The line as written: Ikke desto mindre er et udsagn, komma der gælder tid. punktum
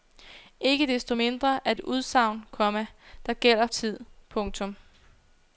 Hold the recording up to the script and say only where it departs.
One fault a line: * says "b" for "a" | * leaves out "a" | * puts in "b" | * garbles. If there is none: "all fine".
all fine